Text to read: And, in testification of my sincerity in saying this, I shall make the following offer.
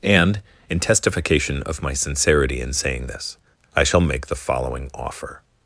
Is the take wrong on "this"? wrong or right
right